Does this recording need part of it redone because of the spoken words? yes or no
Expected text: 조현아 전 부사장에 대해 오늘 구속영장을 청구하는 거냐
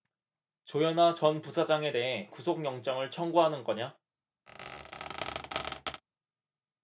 yes